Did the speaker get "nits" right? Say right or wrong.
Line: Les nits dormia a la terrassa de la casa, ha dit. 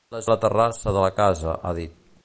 wrong